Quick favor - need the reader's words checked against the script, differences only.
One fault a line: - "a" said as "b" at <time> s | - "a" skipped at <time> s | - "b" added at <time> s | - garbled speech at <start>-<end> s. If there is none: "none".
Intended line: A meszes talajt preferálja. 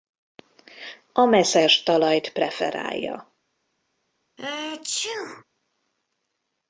none